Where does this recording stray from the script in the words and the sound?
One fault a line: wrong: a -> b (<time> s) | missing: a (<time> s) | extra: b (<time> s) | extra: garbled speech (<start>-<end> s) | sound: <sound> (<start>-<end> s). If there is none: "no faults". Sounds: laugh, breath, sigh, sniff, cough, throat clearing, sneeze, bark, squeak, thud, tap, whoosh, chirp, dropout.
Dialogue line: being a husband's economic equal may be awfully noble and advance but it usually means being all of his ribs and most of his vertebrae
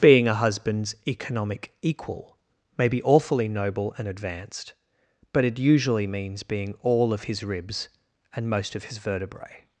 wrong: advance -> advanced (4.1 s)